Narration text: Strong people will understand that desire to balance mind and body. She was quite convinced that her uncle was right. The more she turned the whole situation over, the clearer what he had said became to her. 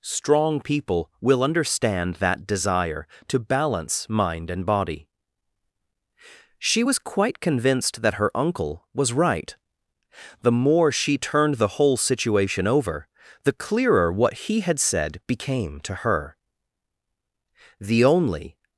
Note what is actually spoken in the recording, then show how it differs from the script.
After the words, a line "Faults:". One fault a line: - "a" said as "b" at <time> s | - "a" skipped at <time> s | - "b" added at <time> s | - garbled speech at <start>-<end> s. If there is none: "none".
Strong people will understand that desire to balance mind and body. She was quite convinced that her uncle was right. The more she turned the whole situation over, the clearer what he had said became to her. The only
Faults:
- "The only" added at 17.8 s